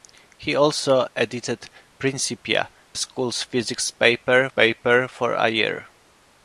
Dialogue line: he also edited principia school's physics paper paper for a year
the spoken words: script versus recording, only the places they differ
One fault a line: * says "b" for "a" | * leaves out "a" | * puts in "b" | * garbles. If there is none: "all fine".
all fine